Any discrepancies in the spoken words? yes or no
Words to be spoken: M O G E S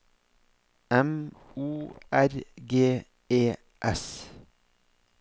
yes